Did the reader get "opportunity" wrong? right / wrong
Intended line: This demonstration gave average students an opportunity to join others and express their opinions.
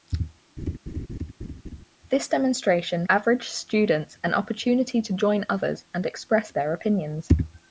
right